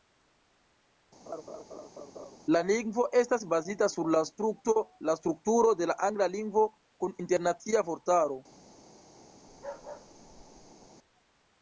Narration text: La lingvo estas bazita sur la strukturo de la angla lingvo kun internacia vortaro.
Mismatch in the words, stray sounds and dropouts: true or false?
true